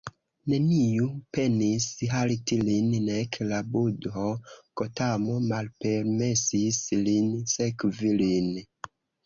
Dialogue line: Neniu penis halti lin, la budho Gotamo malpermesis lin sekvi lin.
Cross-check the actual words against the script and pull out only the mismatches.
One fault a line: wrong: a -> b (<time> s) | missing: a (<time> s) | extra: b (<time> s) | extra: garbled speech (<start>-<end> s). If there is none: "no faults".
extra: nek (3.1 s)